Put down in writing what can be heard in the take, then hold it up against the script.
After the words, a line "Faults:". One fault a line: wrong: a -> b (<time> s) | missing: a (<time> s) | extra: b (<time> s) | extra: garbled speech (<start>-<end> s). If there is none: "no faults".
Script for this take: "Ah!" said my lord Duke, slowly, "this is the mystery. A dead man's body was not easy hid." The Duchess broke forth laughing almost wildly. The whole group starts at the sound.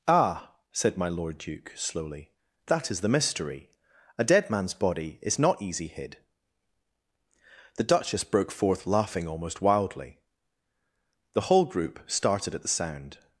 "Ah!" said my lord Duke, slowly, "that is the mystery. A dead man's body is not easy hid." The Duchess broke forth laughing almost wildly. The whole group started at the sound.
Faults:
wrong: this -> that (2.6 s)
wrong: was -> is (5.2 s)
wrong: starts -> started (12.1 s)